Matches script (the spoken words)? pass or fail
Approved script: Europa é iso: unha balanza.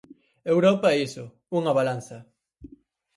pass